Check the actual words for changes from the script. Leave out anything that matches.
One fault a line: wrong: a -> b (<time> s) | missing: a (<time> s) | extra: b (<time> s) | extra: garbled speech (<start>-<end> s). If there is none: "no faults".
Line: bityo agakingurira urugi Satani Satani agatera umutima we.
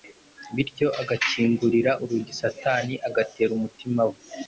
missing: Satani (2.9 s)